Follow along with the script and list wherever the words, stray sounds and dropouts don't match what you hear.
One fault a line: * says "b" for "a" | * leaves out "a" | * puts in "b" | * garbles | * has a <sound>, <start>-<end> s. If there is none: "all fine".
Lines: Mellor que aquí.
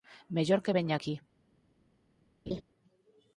* puts in "veña"
* has a laugh, 2.5-2.6 s